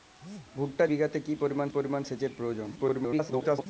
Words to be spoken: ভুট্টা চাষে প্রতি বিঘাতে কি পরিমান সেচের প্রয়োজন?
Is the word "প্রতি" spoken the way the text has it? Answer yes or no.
no